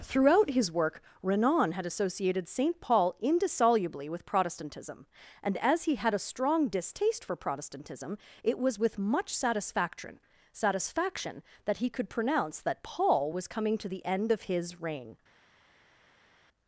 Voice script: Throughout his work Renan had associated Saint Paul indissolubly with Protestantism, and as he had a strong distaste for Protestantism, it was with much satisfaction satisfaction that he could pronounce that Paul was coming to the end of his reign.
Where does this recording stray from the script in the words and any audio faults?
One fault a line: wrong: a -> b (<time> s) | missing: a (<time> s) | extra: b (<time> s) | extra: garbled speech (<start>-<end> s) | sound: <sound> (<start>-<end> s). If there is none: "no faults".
no faults